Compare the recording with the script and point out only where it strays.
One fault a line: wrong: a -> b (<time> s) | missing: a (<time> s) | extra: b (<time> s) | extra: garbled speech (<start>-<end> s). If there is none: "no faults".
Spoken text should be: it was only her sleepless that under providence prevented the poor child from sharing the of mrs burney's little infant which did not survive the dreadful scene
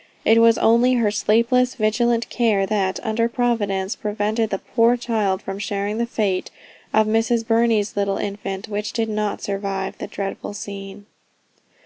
extra: vigilant care (1.8 s)
extra: fate (6.1 s)